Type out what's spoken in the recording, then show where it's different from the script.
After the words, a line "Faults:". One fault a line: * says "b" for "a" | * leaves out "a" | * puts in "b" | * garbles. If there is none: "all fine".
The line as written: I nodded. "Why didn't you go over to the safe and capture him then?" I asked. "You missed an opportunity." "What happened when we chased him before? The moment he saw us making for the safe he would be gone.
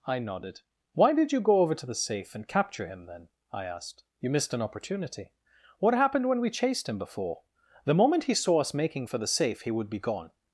I nodded. "Why did you go over to the safe and capture him then?" I asked. "You missed an opportunity." "What happened when we chased him before? The moment he saw us making for the safe he would be gone.
Faults:
* says "did" for "didn't"